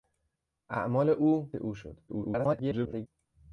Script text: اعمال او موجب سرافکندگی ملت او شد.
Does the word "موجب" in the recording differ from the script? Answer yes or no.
yes